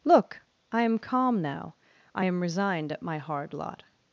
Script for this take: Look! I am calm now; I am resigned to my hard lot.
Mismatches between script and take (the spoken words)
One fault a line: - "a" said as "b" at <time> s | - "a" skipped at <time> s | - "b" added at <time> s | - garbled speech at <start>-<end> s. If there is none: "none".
- "to" said as "at" at 2.9 s